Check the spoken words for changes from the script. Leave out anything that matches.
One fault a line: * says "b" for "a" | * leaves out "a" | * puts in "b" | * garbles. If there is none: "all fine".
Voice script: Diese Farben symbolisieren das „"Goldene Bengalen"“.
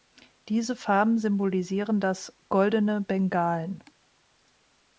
all fine